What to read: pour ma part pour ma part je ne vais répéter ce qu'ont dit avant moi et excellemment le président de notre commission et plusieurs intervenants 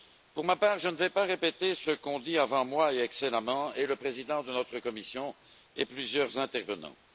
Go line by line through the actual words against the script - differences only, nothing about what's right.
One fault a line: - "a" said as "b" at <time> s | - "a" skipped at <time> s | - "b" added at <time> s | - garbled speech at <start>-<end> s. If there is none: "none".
- "pour ma part" skipped at 0.8 s
- "pas" added at 1.1 s